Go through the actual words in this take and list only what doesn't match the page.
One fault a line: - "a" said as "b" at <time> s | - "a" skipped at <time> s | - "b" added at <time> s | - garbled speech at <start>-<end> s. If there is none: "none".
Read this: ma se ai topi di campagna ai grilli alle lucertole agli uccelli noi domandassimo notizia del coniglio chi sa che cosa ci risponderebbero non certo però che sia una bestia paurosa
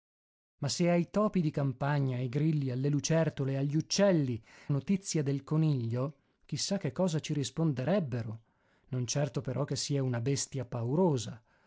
- "noi domandassimo" skipped at 4.4 s